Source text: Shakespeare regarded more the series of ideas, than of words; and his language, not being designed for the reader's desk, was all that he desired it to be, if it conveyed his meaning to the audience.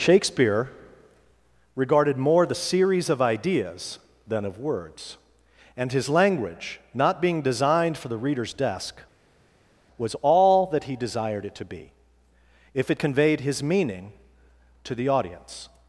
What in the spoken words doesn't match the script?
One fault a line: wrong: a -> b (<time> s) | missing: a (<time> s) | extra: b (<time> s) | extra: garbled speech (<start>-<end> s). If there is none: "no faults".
no faults